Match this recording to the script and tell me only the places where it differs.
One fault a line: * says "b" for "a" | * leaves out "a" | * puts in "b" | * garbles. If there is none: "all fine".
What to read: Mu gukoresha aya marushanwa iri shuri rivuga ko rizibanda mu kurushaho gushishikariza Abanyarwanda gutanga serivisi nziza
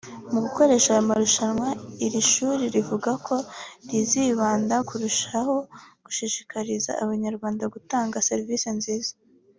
* leaves out "mu"